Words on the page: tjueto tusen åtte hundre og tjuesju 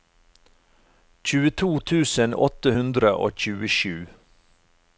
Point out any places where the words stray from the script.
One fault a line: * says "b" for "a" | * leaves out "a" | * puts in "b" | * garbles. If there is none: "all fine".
all fine